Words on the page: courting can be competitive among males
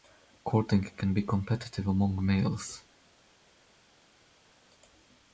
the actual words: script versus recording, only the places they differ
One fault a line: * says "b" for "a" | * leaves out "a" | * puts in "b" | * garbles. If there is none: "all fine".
all fine